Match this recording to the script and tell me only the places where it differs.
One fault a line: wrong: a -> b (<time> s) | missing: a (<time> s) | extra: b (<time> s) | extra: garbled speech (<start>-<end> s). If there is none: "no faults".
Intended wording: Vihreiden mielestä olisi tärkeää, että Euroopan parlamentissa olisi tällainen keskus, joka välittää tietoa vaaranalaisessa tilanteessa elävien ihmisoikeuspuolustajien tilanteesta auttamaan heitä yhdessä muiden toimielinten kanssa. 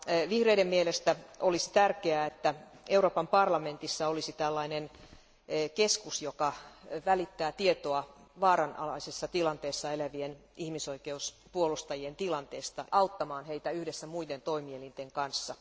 no faults